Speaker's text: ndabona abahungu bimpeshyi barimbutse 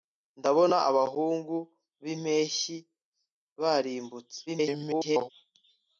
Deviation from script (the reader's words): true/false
true